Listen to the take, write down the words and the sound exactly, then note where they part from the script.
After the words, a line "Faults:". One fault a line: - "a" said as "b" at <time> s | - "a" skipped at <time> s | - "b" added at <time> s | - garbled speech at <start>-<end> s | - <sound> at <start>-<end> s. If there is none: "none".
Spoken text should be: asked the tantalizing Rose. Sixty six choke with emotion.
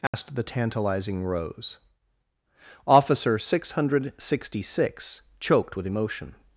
asked the tantalizing Rose. Officer six hundred sixty six choked with emotion.
Faults:
- dropout at 0.1-0.1 s
- "Officer six hundred" added at 2.9 s
- "choke" said as "choked" at 5.4 s